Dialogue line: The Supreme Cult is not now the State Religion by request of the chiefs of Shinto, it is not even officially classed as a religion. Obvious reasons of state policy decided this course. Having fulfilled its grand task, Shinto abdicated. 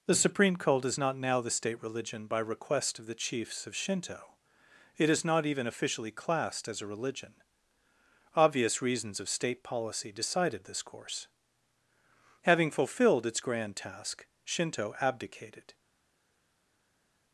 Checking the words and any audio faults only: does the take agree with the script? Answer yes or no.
yes